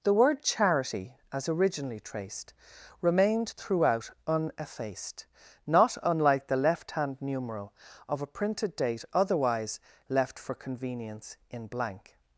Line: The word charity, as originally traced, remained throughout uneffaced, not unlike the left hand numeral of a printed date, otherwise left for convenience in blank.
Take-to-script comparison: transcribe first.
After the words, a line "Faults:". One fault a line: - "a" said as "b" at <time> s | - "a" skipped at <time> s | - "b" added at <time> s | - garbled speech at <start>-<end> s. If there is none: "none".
The word charity, as originally traced, remained throughout uneffaced, not unlike the left hand numeral of a printed date, otherwise left for convenience in blank.
Faults:
none